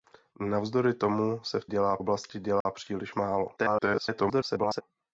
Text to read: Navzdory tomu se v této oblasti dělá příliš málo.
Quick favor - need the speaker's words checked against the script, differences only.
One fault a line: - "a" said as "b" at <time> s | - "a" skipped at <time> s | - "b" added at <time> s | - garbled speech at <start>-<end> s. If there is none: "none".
- "této" said as "dělá" at 1.6 s
- garbled speech at 3.6-4.8 s